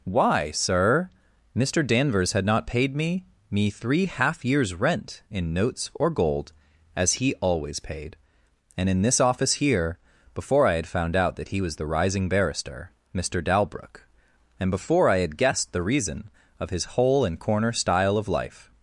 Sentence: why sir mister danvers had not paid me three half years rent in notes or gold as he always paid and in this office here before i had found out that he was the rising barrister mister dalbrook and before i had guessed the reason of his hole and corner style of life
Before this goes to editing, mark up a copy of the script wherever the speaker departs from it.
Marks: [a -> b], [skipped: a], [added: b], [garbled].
why sir mister danvers had not paid me [added: me] three half years rent in notes or gold as he always paid and in this office here before i had found out that he was the rising barrister mister dalbrook and before i had guessed the reason of his hole and corner style of life